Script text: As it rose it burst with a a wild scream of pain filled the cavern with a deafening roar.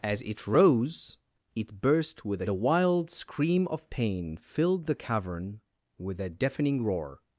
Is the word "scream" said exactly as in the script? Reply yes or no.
yes